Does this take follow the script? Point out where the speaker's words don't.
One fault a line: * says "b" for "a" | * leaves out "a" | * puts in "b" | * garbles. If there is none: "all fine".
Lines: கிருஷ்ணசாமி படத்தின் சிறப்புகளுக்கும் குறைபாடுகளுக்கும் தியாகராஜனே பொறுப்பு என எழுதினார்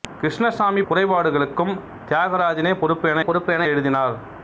* says "குறைபாடுகளுக்கும் தியாகராஜனே பொறுப்பு என" for "படத்தின் சிறப்புகளுக்கும் குறைபாடுகளுக்கும் தியாகராஜனே"